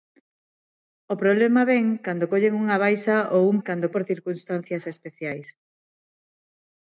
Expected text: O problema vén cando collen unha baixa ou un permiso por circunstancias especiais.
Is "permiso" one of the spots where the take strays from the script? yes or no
yes